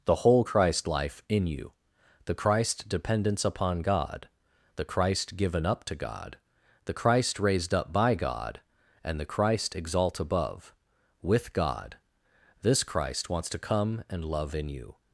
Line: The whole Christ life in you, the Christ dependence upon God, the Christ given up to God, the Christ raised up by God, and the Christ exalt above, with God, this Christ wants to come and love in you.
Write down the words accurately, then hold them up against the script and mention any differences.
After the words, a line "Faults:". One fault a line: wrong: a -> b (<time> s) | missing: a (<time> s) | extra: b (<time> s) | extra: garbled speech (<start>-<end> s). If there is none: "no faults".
The whole Christ life in you, the Christ dependence upon God, the Christ given up to God, the Christ raised up by God, and the Christ exalt above, with God, this Christ wants to come and love in you.
Faults:
no faults